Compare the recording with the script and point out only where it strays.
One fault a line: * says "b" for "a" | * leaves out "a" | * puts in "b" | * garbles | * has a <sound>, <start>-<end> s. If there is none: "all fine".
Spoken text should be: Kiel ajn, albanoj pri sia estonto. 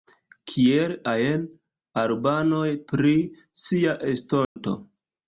* has a dropout, 4.4-4.6 s